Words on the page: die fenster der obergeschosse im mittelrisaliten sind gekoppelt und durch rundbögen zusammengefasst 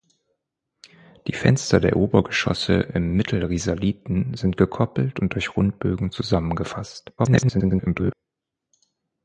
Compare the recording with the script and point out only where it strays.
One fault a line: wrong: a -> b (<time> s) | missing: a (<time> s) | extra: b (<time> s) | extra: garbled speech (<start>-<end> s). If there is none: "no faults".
extra: garbled speech (7.2-8.1 s)